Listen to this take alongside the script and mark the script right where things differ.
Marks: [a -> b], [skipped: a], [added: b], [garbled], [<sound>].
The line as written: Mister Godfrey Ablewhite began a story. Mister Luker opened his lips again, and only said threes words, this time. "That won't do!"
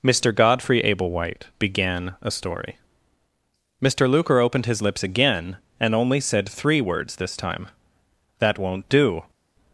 Mister Godfrey Ablewhite began a story. Mister Luker opened his lips again, and only said [threes -> three] words, this time. "That won't do!"